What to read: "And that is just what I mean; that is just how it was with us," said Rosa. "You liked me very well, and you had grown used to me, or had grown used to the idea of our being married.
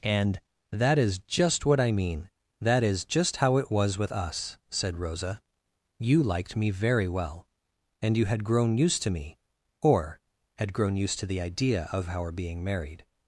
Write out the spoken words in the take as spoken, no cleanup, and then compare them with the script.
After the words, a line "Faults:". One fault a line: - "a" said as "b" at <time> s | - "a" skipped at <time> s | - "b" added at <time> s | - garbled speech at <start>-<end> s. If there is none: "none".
"And that is just what I mean; that is just how it was with us," said Rosa. "You liked me very well, and you had grown used to me, or had grown used to the idea of our being married.
Faults:
none